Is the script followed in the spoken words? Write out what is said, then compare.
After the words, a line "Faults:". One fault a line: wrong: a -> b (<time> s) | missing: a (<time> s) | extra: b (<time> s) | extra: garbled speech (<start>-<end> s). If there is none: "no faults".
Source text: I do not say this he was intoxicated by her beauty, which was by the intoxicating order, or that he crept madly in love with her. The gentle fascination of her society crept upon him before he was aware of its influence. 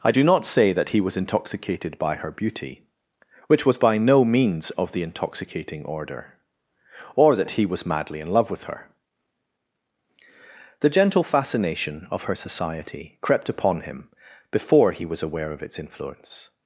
I do not say that he was intoxicated by her beauty, which was by no means of the intoxicating order, or that he was madly in love with her. The gentle fascination of her society crept upon him before he was aware of its influence.
Faults:
wrong: this -> that (0.7 s)
extra: no means of (4.0 s)
wrong: crept -> was (7.7 s)